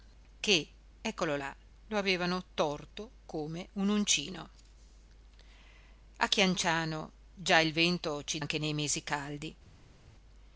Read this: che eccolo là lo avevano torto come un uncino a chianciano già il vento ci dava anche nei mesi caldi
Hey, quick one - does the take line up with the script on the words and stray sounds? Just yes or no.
no